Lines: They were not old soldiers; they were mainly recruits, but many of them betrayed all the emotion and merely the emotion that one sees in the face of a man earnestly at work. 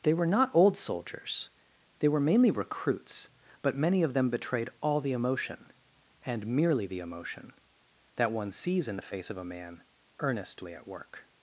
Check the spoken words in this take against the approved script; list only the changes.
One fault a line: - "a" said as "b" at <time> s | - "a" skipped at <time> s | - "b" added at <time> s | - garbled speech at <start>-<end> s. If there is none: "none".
none